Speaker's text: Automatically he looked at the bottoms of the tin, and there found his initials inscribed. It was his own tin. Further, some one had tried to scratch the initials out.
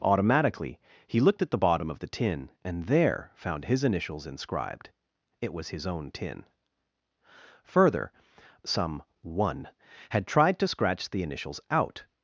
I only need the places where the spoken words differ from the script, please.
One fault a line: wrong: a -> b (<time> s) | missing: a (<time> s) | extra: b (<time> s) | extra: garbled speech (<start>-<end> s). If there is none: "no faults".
wrong: bottoms -> bottom (1.5 s)